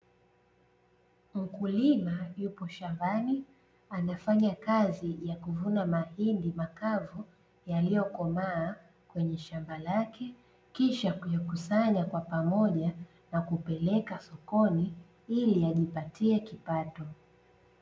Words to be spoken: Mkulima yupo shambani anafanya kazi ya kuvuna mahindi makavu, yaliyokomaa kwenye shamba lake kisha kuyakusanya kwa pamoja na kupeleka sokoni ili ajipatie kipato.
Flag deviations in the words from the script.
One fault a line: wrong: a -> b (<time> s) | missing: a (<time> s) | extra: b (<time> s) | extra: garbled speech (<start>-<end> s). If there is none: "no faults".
no faults